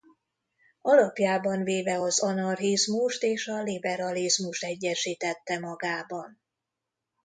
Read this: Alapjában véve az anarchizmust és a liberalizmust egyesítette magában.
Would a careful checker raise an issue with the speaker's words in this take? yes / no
no